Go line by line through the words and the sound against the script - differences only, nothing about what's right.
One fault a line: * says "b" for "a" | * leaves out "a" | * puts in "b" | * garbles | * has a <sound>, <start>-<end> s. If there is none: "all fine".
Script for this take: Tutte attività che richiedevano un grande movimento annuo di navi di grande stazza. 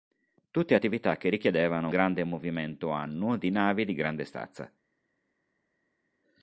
* leaves out "un"